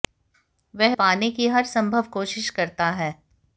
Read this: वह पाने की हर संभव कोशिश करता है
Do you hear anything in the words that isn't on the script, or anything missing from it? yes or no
no